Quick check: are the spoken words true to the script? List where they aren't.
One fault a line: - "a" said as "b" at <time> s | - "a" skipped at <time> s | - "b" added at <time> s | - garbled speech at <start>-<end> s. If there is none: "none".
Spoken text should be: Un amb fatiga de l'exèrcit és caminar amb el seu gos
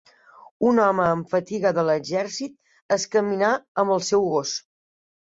- "home" added at 0.8 s